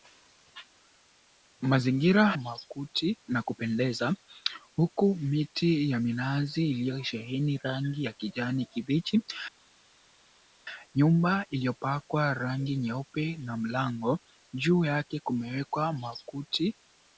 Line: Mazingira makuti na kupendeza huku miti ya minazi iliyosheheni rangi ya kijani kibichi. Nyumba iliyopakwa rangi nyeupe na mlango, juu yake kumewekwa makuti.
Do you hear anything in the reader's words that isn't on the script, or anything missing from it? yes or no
no